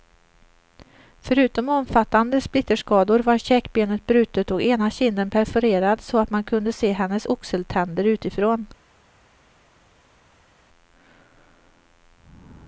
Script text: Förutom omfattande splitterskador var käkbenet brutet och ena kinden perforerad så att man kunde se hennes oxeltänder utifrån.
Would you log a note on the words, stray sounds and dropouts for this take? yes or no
no